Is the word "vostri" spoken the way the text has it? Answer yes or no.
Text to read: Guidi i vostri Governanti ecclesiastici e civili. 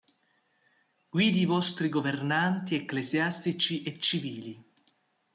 yes